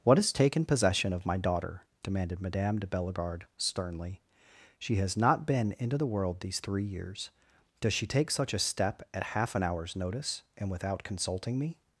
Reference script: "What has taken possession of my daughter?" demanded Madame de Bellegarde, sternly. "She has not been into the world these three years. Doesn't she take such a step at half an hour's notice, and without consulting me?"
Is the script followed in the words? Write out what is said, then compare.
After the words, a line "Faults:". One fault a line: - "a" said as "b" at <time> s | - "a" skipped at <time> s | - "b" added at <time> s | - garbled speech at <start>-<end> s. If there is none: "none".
"What has taken possession of my daughter?" demanded Madame de Bellegarde, sternly. "She has not been into the world these three years. Does she take such a step at half an hour's notice, and without consulting me?"
Faults:
- "Doesn't" said as "Does" at 7.8 s